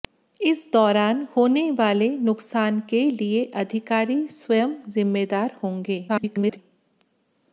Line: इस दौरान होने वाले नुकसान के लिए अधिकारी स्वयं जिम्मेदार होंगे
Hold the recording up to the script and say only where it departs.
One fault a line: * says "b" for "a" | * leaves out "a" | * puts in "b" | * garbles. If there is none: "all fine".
* garbles